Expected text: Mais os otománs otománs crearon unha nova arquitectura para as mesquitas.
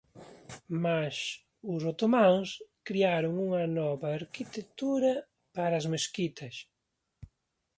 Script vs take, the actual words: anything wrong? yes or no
yes